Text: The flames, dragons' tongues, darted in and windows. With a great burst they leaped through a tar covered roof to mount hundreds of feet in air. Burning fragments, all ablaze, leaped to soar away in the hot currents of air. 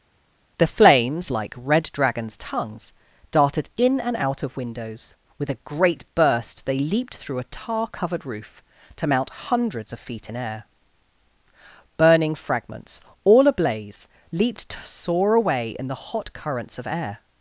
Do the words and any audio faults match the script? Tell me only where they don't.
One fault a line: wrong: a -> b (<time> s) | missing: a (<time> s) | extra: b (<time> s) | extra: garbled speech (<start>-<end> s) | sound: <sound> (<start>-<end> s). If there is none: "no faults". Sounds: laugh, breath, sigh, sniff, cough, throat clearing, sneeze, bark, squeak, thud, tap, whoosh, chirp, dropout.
extra: like red (1.3 s)
extra: out of (4.2 s)